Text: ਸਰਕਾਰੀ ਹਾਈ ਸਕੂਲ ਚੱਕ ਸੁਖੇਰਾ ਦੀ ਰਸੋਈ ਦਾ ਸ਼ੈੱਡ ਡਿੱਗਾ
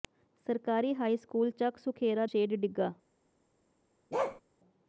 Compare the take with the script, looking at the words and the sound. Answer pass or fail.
fail